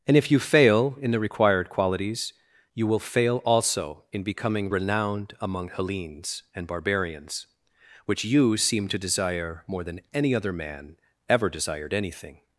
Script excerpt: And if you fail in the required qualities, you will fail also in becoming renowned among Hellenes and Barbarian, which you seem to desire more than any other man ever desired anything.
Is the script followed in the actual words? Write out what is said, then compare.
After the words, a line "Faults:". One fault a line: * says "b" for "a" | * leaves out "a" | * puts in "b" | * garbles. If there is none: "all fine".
And if you fail in the required qualities, you will fail also in becoming renowned among Hellenes and Barbarians, which you seem to desire more than any other man ever desired anything.
Faults:
* says "Barbarians" for "Barbarian"